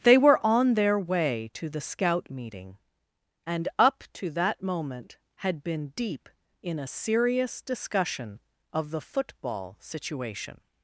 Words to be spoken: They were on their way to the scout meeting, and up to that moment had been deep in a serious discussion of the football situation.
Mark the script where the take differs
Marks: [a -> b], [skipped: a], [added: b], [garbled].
They were on their way to the scout meeting, and up to that moment had been deep in a serious discussion of the football situation.